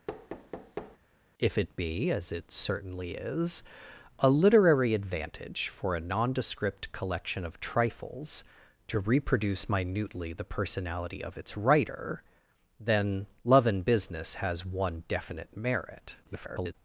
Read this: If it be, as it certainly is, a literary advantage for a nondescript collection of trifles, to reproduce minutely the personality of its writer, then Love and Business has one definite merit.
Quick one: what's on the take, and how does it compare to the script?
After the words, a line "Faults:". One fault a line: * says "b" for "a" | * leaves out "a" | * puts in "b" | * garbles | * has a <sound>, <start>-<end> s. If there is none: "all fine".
If it be, as it certainly is, a literary advantage for a nondescript collection of trifles, to reproduce minutely the personality of its writer, then Love and Business has one definite merit. [garbled]
Faults:
* has a thud, 0.1-1.0 s
* garbles